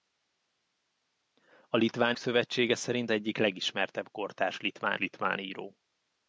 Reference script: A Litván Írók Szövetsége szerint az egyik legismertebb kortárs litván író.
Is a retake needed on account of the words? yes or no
yes